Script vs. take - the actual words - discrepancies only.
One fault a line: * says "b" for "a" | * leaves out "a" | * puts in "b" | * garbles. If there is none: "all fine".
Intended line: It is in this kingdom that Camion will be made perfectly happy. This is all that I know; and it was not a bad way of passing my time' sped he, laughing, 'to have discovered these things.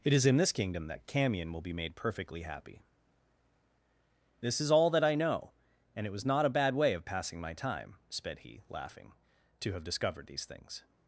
all fine